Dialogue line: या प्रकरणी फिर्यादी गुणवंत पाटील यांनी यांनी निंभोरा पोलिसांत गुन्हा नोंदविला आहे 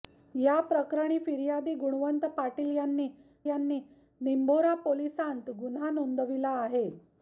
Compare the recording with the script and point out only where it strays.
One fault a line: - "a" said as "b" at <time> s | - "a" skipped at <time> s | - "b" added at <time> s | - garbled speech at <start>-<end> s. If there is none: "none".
none